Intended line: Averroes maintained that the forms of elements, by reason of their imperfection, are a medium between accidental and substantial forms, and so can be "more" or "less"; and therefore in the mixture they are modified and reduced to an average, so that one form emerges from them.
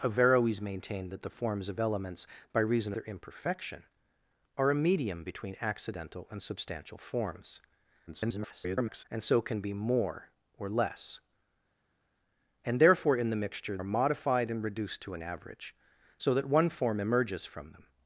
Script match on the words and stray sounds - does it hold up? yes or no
no